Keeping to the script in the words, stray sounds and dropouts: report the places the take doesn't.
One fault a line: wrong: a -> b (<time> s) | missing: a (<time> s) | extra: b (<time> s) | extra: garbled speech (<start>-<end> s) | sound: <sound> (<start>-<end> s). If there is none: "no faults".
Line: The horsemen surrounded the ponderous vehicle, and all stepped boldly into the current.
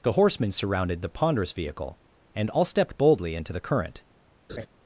sound: laugh (4.5-4.7 s)